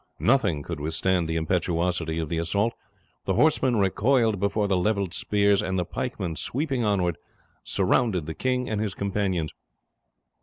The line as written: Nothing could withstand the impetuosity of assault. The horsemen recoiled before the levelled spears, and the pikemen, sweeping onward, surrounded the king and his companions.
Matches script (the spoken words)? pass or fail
fail